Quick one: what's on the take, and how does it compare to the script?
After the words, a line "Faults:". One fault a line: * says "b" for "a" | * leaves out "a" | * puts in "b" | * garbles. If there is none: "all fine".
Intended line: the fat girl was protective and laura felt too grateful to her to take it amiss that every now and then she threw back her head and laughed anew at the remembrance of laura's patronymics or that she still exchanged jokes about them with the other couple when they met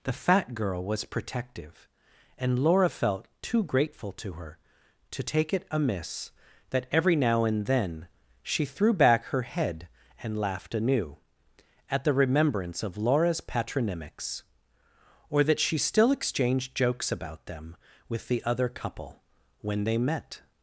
the fat girl was protective and laura felt too grateful to her to take it amiss that every now and then she threw back her head and laughed anew at the remembrance of laura's patronymics or that she still exchanged jokes about them with the other couple when they met
Faults:
all fine